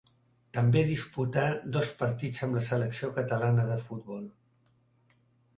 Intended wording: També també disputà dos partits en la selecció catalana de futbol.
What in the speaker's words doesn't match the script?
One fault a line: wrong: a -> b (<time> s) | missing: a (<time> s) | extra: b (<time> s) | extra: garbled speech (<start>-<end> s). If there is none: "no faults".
missing: també (0.8 s)
wrong: en -> amb (2.5 s)